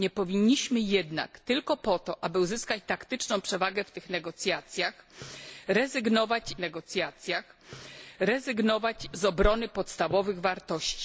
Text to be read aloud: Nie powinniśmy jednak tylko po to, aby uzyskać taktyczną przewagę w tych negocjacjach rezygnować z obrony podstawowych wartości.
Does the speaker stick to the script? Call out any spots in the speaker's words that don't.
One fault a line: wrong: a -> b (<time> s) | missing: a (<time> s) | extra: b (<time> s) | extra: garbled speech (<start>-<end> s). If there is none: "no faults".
extra: negocjacjach rezygnować (6.6 s)